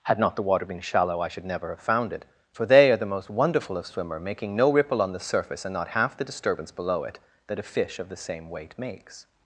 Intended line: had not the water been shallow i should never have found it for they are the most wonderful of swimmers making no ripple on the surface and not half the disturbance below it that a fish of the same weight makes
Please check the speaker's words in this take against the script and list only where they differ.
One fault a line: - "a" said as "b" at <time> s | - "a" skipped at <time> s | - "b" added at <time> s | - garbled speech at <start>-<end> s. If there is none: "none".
- "swimmers" said as "swimmer" at 3.9 s